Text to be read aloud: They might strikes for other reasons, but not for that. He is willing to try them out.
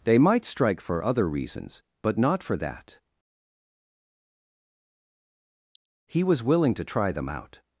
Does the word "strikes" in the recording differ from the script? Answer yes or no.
yes